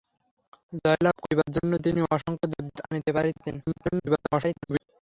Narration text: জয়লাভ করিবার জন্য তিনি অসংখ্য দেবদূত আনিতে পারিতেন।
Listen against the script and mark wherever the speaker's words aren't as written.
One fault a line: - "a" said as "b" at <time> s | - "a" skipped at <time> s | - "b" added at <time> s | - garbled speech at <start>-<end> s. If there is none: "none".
- garbled speech at 3.6-4.8 s